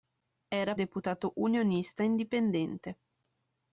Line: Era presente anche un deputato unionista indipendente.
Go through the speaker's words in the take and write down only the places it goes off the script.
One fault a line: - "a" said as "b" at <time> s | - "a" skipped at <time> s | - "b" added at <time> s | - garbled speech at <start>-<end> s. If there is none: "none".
- "presente anche un" skipped at 0.8 s